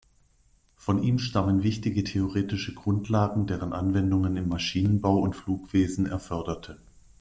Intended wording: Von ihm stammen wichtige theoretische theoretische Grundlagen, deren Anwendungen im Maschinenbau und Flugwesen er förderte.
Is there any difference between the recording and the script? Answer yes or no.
yes